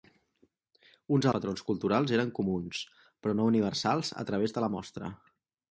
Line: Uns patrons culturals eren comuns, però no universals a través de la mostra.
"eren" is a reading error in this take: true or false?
false